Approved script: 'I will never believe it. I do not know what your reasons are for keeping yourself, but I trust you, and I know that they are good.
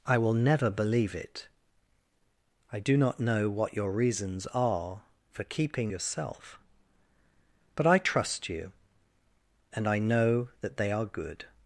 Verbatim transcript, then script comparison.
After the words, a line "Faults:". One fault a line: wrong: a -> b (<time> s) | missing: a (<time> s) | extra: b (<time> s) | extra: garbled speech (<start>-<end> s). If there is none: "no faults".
'I will never believe it. I do not know what your reasons are for keeping yourself, but I trust you, and I know that they are good.
Faults:
no faults